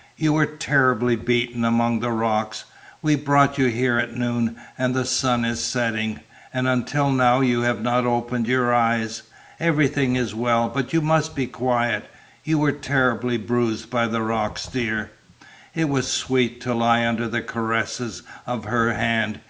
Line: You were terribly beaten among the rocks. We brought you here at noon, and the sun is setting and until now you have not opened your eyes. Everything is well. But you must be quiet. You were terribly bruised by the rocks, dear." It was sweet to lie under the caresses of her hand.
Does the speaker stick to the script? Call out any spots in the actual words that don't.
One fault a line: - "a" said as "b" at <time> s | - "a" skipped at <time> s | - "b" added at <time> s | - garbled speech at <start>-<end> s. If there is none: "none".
none